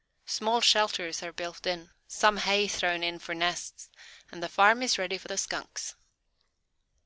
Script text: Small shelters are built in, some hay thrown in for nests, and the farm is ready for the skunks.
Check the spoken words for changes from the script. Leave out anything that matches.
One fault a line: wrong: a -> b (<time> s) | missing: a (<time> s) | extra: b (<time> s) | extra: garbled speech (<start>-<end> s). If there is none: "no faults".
no faults